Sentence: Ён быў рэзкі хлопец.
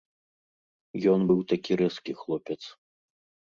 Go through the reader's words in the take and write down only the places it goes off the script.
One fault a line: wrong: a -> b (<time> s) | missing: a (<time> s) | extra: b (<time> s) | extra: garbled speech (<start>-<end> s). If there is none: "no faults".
extra: такі (1.5 s)